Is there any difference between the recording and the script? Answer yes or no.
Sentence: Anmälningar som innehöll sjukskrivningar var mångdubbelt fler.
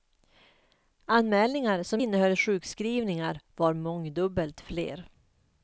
no